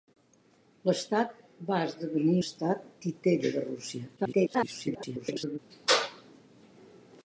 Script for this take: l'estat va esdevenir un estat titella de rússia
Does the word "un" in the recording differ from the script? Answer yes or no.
yes